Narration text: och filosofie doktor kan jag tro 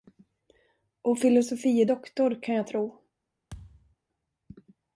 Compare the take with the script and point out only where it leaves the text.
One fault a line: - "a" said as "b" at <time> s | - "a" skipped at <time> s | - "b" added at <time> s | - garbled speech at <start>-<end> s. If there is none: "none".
none